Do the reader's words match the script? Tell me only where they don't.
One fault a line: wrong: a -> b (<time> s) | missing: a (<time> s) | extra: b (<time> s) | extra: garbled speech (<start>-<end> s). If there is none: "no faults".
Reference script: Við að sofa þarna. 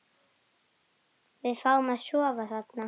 extra: fáum (1.6 s)